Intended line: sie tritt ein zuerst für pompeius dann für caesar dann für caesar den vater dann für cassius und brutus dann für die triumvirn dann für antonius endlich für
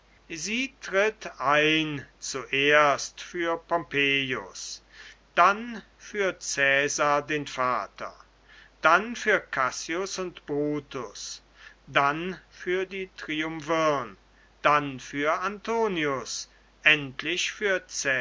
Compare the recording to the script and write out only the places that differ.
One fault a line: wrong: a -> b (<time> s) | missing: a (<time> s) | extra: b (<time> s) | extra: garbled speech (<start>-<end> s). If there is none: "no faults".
missing: dann für caesar (7.3 s)